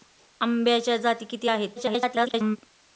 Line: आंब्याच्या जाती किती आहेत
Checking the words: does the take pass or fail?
fail